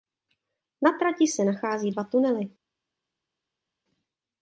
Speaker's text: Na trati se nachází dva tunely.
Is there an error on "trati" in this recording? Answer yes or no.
no